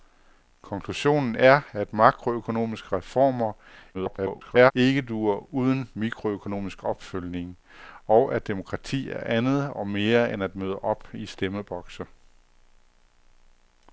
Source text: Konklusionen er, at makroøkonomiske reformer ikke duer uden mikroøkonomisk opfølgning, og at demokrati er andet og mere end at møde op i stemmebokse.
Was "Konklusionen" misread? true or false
false